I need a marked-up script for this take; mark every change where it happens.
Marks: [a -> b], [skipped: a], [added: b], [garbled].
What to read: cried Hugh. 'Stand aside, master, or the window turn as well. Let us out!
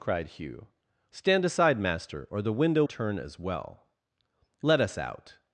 cried Hugh. 'Stand aside, master, or the window turn as well. Let us out!